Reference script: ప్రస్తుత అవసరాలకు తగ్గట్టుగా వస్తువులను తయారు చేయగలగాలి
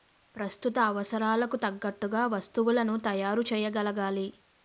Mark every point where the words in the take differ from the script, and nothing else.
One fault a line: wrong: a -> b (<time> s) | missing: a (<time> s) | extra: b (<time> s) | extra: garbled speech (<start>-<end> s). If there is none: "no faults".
no faults